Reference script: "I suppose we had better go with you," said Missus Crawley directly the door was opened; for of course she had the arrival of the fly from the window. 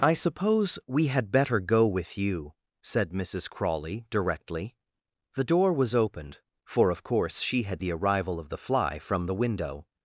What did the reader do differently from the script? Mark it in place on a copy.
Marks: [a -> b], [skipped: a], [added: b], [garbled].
"I suppose we had better go with you," said Missus Crawley directly the door was opened; for of course she had the arrival of the fly from the window.